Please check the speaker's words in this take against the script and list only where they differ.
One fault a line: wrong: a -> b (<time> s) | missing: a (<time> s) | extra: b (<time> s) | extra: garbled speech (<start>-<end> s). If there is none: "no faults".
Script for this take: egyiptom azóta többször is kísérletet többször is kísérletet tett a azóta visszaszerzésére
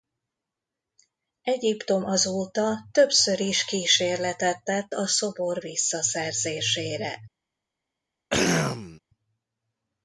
missing: többször is kísérletet (4.6 s)
wrong: azóta -> szobor (5.1 s)